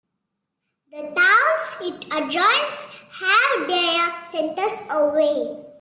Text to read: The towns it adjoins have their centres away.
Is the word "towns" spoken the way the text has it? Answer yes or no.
yes